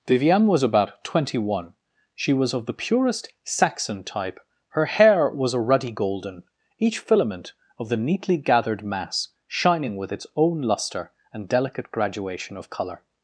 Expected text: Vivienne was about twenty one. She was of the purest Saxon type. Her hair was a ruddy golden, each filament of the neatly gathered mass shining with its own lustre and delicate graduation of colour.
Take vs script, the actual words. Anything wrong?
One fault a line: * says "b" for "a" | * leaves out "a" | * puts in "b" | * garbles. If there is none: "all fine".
all fine